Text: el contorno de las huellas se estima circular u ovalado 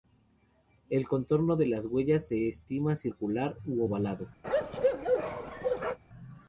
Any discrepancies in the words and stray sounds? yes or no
yes